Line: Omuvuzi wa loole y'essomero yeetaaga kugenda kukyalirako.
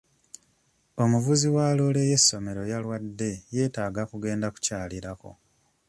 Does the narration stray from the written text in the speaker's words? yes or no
yes